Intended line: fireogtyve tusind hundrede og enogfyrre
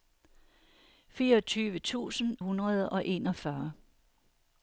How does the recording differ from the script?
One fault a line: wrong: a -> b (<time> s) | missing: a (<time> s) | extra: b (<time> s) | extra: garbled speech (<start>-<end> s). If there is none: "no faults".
no faults